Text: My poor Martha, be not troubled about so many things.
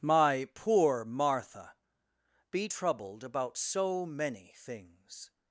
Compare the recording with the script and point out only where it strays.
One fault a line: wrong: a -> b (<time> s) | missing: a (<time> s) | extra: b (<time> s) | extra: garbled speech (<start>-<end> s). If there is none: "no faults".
missing: not (2.7 s)